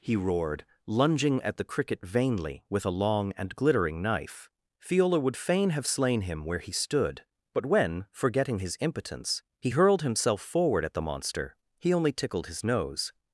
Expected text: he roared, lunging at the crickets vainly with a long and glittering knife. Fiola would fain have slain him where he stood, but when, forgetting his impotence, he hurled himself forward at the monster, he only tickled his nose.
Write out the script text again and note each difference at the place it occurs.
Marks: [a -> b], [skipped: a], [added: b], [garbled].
he roared, lunging at the [crickets -> cricket] vainly with a long and glittering knife. Fiola would fain have slain him where he stood, but when, forgetting his impotence, he hurled himself forward at the monster, he only tickled his nose.